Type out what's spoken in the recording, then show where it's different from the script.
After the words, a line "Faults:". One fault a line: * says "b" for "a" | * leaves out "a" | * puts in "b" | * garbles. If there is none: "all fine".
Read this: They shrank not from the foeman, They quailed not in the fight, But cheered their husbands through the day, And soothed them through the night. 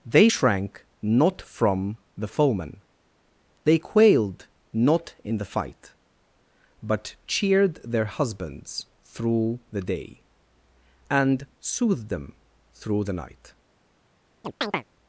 They shrank not from the foeman, They quailed not in the fight, But cheered their husbands through the day, And soothed them through the night.
Faults:
all fine